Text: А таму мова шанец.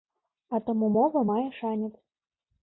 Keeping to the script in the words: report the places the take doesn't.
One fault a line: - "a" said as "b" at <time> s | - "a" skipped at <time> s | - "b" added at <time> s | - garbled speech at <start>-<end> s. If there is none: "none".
- "мае" added at 1.3 s